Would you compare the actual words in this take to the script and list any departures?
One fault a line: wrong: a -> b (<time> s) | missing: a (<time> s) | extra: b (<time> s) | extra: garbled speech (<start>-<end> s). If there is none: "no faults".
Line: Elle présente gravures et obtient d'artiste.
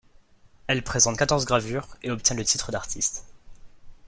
extra: quatorze (1.2 s)
extra: le titre (2.3 s)